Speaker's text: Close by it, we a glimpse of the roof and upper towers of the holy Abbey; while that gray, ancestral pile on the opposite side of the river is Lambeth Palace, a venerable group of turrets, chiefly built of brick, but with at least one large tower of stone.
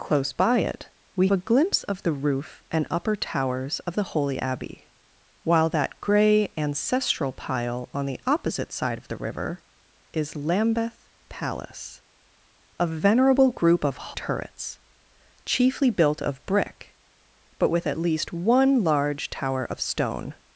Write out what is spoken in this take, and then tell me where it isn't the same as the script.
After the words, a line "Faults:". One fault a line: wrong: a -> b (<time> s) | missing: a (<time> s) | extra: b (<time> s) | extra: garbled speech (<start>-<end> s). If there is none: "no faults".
Close by it, we a glimpse of the roof and upper towers of the holy Abbey; while that gray, ancestral pile on the opposite side of the river is Lambeth Palace, a venerable group of turrets, chiefly built of brick, but with at least one large tower of stone.
Faults:
no faults